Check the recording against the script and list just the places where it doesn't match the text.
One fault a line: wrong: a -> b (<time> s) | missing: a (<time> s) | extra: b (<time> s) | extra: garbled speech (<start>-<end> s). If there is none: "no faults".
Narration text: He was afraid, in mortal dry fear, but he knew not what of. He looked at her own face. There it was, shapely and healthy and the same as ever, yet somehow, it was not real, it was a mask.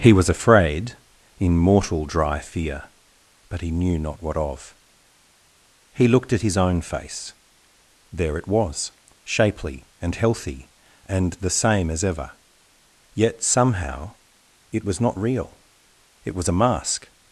wrong: her -> his (6.4 s)